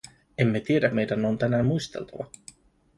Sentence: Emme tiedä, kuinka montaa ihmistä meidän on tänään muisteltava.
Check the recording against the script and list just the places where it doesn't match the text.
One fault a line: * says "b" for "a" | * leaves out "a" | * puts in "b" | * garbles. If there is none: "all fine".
* leaves out "kuinka montaa ihmistä"